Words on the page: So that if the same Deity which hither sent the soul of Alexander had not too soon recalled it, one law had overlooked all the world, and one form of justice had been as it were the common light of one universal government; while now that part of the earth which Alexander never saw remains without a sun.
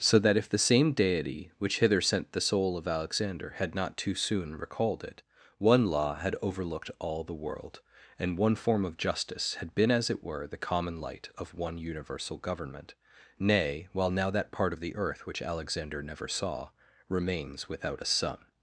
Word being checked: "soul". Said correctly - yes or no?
yes